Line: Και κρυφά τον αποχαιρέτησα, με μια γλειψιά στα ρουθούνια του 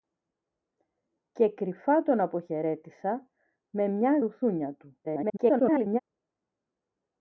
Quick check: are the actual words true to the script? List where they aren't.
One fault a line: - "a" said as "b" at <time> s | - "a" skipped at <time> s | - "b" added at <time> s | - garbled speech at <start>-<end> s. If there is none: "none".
- "γλειψιά στα" skipped at 4.2 s
- garbled speech at 5.0-6.0 s